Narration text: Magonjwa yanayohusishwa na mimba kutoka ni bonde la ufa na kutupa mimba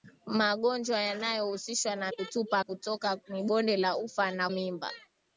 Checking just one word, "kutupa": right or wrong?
wrong